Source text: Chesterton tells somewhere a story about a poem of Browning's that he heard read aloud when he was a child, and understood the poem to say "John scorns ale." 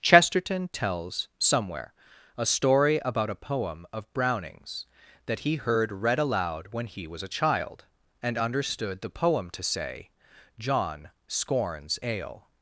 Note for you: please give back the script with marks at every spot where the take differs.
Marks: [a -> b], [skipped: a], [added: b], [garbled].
Chesterton tells somewhere a story about a poem of Browning's that he heard read aloud when he was a child, and understood the poem to say "John scorns ale."